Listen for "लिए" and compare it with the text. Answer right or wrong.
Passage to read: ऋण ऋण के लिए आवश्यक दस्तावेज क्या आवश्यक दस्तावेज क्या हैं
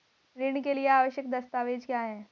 right